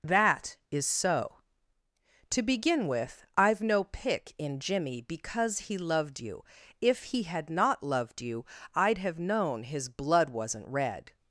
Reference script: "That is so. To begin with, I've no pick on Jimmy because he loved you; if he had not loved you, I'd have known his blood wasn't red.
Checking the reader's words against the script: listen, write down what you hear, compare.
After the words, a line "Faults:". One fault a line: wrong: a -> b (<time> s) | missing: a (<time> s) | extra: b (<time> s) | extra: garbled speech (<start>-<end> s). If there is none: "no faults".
"That is so. To begin with, I've no pick in Jimmy because he loved you; if he had not loved you, I'd have known his blood wasn't red.
Faults:
wrong: on -> in (4.4 s)